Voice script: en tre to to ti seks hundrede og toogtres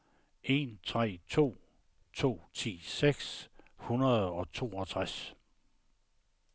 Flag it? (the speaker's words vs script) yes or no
no